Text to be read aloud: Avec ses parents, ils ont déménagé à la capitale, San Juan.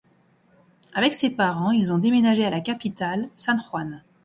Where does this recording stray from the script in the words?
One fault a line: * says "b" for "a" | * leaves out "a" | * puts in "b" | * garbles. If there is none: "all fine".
all fine